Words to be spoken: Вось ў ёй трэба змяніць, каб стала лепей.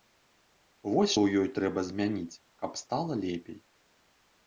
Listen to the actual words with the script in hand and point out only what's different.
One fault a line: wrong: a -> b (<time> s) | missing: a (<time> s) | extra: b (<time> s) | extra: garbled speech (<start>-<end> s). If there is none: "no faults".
no faults